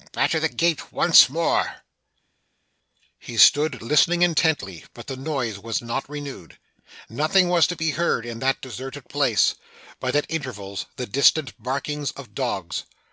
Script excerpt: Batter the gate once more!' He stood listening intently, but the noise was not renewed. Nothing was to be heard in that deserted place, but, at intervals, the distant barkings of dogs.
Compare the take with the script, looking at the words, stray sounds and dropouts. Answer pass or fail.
pass